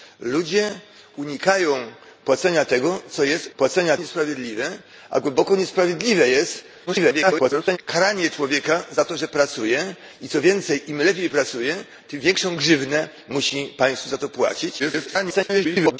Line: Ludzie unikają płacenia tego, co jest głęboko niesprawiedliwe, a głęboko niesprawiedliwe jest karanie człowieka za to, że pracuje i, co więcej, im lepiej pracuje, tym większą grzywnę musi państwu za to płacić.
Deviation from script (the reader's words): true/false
true